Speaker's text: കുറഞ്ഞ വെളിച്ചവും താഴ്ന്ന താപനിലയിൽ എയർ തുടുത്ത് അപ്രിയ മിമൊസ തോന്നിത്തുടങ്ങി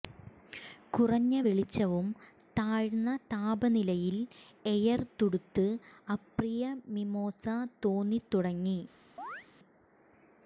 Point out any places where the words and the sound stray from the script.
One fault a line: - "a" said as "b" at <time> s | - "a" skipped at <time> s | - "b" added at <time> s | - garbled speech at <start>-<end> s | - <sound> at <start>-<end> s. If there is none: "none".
- chirp at 9.2-9.5 s